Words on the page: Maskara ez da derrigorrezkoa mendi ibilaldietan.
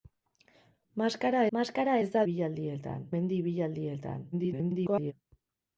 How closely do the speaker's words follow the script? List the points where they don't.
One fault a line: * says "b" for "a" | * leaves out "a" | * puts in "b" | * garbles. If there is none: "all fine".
* puts in "maskara"
* says "ibilaldietan" for "derrigorrezkoa"
* garbles